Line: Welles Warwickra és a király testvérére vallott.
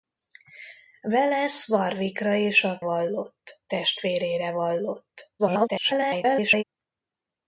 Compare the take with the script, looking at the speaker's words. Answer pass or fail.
fail